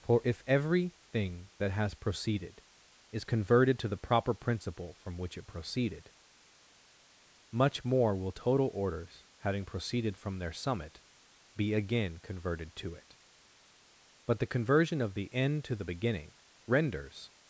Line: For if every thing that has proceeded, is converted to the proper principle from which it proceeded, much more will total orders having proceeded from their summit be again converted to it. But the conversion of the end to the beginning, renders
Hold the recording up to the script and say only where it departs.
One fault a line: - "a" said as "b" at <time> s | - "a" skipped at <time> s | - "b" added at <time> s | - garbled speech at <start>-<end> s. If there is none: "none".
none